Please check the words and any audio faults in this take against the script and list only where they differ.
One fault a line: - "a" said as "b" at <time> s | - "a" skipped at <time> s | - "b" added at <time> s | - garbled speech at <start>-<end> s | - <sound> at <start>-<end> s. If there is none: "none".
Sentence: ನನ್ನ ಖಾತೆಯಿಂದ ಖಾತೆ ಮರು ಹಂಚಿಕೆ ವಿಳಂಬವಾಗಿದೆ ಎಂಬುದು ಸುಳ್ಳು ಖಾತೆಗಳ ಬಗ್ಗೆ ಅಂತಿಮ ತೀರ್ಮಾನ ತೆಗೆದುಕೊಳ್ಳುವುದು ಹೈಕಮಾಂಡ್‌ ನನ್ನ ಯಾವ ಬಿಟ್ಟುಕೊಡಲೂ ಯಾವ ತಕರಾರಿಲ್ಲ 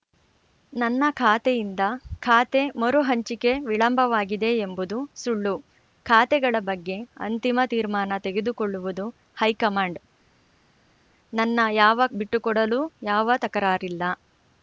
none